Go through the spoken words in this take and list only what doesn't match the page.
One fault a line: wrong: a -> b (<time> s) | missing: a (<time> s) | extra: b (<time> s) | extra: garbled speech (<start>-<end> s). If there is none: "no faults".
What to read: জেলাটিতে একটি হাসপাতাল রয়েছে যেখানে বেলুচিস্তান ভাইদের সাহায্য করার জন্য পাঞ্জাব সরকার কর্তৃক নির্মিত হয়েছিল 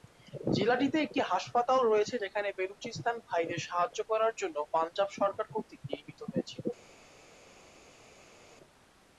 no faults